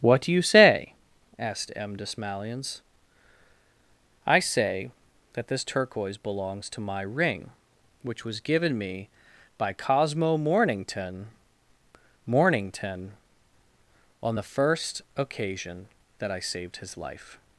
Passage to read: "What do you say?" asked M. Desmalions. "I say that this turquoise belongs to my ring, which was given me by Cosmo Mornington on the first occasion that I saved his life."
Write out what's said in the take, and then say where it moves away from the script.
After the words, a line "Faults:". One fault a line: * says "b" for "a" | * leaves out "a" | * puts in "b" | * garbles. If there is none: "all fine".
"What do you say?" asked M. Desmalions. "I say that this turquoise belongs to my ring, which was given me by Cosmo Mornington Mornington on the first occasion that I saved his life."
Faults:
* puts in "Mornington"